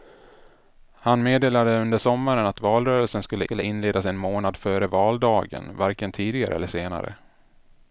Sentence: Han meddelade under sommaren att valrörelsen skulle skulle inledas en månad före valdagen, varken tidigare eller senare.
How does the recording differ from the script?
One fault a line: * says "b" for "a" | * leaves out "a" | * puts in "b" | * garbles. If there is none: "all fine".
all fine